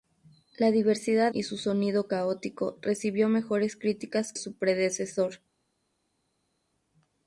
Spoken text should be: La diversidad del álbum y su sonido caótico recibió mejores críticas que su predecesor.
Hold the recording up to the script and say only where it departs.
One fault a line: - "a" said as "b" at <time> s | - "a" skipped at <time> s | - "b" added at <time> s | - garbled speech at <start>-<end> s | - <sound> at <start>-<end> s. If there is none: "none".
- "del álbum" skipped at 1.3 s
- "que" skipped at 4.3 s